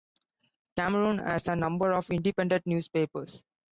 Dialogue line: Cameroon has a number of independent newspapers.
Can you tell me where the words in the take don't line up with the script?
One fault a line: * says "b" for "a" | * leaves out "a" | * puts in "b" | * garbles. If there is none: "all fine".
all fine